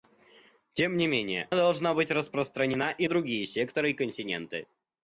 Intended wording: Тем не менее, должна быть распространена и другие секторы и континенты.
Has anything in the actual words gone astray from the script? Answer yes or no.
no